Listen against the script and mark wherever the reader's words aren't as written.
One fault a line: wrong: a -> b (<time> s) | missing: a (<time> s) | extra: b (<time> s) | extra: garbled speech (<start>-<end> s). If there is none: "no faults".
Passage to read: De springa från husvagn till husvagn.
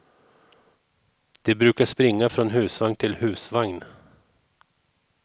extra: brukar (1.6 s)